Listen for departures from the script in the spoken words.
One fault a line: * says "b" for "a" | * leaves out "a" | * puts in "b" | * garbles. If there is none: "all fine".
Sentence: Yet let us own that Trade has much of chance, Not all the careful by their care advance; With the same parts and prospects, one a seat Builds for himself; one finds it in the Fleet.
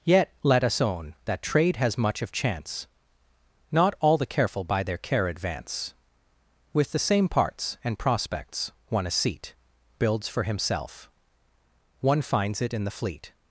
all fine